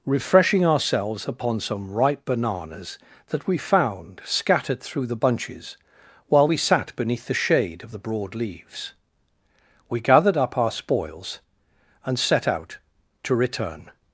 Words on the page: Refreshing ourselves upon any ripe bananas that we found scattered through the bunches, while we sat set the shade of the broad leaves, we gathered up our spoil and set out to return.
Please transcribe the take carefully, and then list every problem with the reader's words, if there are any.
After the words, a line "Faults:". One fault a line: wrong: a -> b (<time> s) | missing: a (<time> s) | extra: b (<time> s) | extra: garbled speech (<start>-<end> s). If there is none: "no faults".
Refreshing ourselves upon some ripe bananas that we found scattered through the bunches, while we sat beneath the shade of the broad leaves, we gathered up our spoils and set out to return.
Faults:
wrong: any -> some (1.6 s)
wrong: set -> beneath (6.9 s)
wrong: spoil -> spoils (10.7 s)